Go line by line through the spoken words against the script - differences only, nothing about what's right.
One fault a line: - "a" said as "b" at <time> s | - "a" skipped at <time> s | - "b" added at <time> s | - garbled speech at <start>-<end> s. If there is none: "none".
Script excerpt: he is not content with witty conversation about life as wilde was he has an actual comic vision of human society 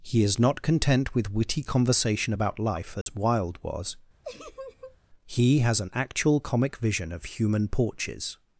- "society" said as "porches" at 7.7 s